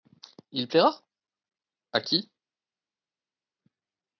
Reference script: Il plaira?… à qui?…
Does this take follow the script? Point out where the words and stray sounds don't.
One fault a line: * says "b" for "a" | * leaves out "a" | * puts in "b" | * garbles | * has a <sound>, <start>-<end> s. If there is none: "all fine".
all fine